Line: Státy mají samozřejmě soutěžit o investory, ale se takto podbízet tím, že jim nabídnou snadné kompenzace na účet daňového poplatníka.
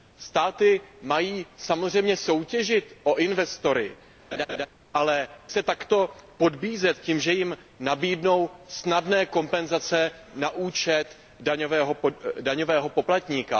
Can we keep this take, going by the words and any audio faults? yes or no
no